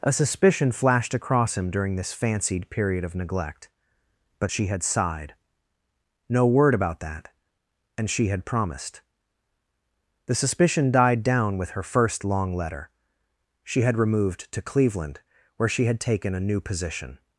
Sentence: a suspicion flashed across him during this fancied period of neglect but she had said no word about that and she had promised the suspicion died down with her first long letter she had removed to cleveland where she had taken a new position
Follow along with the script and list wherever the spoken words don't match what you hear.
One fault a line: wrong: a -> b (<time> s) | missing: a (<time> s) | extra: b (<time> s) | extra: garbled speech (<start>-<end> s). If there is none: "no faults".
wrong: said -> sighed (4.8 s)